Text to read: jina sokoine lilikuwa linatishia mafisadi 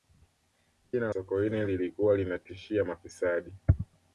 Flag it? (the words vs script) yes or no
no